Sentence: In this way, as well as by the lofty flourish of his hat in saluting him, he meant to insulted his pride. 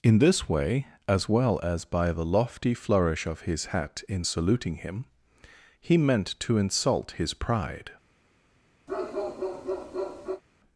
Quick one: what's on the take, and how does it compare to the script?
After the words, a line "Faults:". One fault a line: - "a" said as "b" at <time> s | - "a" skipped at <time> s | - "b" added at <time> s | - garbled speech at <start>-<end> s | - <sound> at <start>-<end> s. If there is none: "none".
In this way, as well as by the lofty flourish of his hat in saluting him, he meant to insult his pride.
Faults:
- "insulted" said as "insult" at 6.6 s
- bark at 8.9-10.4 s